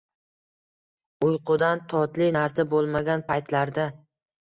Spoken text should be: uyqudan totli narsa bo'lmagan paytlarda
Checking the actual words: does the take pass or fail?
pass